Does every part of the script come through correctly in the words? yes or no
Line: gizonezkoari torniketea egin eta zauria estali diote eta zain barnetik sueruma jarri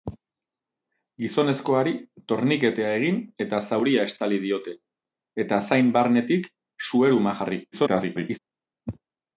no